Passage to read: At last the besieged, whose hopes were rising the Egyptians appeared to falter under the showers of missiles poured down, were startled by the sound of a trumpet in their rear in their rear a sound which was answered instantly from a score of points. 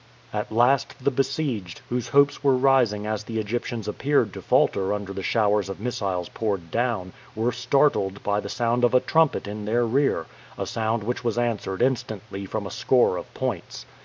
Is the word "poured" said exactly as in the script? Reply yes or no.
yes